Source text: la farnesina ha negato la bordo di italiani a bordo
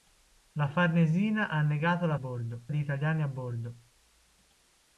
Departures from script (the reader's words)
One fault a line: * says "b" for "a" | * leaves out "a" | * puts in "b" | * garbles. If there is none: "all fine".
all fine